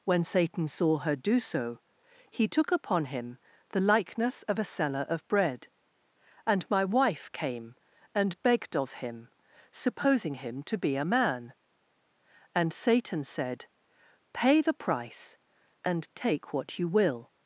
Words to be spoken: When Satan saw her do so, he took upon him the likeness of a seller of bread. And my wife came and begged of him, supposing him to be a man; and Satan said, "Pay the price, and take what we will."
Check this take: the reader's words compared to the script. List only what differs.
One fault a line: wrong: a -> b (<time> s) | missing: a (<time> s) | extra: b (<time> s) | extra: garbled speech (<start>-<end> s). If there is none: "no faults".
wrong: we -> you (16.8 s)